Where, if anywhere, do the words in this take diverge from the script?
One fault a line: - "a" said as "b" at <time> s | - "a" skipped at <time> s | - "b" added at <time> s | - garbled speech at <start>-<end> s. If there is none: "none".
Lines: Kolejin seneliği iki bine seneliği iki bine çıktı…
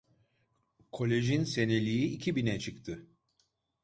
- "seneliği iki bine" skipped at 2.6 s